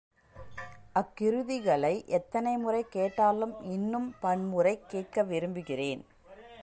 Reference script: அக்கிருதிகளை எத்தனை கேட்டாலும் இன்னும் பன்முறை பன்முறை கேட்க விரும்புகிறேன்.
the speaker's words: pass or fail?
fail